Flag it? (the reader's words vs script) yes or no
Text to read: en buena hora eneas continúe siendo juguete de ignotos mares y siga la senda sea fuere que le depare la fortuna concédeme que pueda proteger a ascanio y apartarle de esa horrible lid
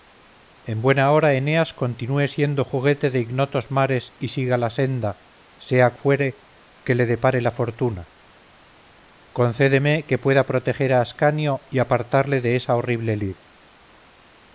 no